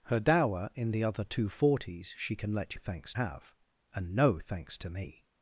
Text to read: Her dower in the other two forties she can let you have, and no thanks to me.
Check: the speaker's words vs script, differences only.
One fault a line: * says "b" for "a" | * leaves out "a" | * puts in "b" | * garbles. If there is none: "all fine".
* says "thanks" for "you"